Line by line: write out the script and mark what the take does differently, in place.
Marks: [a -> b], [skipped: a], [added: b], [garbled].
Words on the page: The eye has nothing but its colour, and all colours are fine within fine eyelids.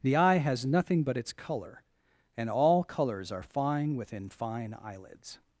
The eye has nothing but its colour, and all colours are fine within fine eyelids.